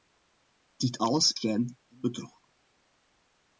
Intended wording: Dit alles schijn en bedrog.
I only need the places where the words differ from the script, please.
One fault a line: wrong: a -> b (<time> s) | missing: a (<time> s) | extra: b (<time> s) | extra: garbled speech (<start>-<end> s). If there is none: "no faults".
no faults